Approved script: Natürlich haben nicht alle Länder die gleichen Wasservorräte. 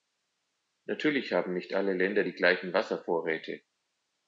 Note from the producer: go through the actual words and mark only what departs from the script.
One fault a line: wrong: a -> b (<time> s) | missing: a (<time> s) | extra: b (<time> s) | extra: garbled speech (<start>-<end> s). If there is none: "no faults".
no faults